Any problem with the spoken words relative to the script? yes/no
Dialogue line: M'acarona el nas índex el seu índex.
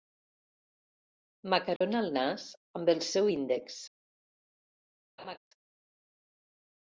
yes